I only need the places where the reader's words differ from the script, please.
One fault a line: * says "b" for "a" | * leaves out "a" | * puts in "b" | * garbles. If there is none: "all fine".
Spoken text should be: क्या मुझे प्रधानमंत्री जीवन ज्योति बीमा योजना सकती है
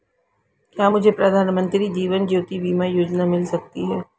* puts in "मिल"